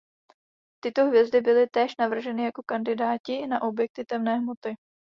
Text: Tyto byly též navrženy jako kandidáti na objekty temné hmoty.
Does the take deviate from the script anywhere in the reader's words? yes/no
yes